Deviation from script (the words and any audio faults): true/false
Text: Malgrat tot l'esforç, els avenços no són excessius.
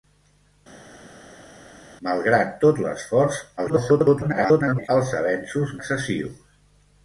true